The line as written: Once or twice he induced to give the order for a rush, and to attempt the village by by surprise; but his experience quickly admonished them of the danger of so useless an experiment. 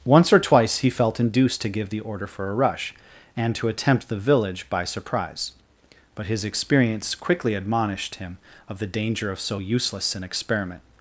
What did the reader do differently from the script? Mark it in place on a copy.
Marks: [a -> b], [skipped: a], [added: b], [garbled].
Once or twice he [added: felt] induced to give the order for a rush, and to attempt the village by [skipped: by] surprise; but his experience quickly admonished [them -> him] of the danger of so useless an experiment.